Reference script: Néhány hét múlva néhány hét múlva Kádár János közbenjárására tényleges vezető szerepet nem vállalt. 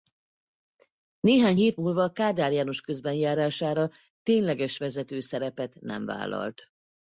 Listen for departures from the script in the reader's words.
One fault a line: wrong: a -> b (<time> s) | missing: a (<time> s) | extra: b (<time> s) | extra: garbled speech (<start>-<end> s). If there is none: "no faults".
missing: néhány hét múlva (2.1 s)